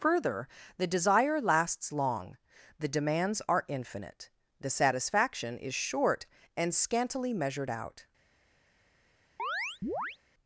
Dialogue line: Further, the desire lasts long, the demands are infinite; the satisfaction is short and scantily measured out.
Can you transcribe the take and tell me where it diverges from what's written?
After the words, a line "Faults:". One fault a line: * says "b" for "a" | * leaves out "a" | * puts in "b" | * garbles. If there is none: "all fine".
Further, the desire lasts long, the demands are infinite; the satisfaction is short and scantily measured out.
Faults:
all fine